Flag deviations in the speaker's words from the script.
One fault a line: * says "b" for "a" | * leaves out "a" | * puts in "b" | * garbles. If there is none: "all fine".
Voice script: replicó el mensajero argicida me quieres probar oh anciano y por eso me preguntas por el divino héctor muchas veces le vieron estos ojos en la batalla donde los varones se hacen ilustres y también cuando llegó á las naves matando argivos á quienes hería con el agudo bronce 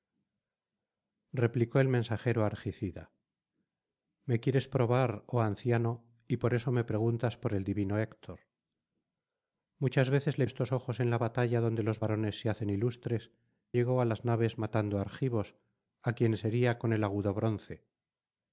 * leaves out "vieron"
* leaves out "y también cuando"